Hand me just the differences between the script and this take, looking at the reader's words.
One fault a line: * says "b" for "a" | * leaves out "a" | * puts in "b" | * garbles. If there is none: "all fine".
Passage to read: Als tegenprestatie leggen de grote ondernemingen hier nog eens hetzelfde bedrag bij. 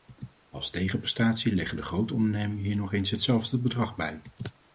all fine